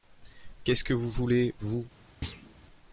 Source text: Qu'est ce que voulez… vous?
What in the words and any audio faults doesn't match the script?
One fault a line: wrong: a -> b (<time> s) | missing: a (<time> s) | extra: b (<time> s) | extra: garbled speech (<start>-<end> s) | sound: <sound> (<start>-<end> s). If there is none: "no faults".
extra: vous (0.9 s)
sound: thud (2.2-2.6 s)